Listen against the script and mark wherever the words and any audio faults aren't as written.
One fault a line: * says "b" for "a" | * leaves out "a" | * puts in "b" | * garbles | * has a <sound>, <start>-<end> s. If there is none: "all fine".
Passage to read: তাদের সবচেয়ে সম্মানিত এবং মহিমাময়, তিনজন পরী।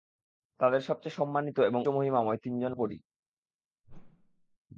* has a whoosh, 3.8-4.6 s